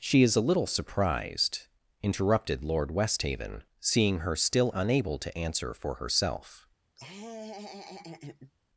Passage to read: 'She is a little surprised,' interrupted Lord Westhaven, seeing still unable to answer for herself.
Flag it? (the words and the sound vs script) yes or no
yes